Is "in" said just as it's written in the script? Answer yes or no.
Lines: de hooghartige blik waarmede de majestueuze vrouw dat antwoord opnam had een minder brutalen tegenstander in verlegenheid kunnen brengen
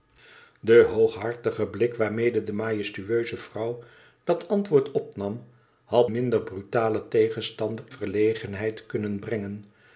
no